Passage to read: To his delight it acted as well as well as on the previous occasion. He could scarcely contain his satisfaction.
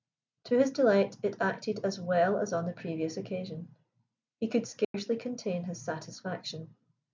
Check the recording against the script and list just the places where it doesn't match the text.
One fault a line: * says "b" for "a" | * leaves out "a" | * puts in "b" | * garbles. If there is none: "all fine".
* leaves out "well as"